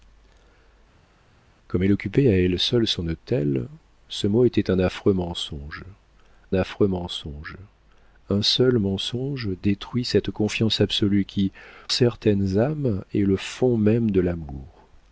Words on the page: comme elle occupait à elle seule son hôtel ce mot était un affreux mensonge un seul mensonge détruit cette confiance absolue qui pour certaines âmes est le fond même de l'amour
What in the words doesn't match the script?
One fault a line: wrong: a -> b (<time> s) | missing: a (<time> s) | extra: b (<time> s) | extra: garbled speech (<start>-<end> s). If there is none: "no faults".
extra: affreux mensonge (6.5 s)
missing: pour (11.5 s)